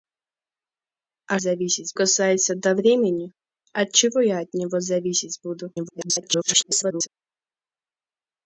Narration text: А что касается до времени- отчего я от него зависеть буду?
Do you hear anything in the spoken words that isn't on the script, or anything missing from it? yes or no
yes